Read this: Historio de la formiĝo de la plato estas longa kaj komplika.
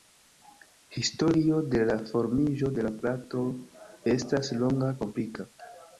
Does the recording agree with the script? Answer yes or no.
no